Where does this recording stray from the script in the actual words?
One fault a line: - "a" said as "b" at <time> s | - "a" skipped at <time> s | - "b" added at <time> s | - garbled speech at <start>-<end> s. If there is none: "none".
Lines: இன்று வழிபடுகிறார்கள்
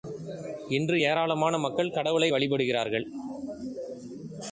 - "ஏராளமான மக்கள் கடவுளை" added at 1.0 s